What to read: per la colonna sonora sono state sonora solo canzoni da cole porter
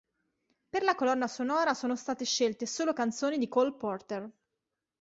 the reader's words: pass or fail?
fail